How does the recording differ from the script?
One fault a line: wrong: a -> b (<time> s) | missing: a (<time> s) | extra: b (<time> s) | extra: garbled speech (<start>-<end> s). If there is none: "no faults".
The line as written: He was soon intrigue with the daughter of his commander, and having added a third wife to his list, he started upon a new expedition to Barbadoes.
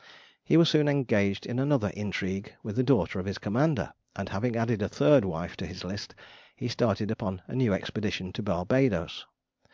extra: engaged in another (0.9 s)